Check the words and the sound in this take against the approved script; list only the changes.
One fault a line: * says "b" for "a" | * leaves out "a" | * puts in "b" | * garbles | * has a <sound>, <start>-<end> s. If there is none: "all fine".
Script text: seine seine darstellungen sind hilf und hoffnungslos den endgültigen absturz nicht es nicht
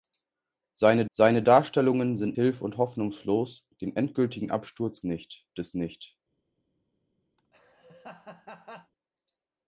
* has a laugh, 7.4-8.9 s